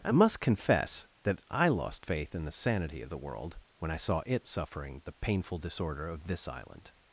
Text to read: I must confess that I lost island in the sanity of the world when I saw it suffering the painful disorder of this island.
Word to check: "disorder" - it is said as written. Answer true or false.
true